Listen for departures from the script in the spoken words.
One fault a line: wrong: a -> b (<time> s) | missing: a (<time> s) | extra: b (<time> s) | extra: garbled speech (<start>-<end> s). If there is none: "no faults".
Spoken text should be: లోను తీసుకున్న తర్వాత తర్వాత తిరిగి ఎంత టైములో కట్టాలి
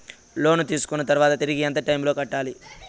missing: తర్వాత (1.3 s)